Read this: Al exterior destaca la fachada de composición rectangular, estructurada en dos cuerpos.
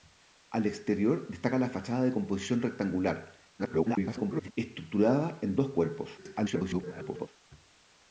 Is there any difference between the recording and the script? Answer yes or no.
yes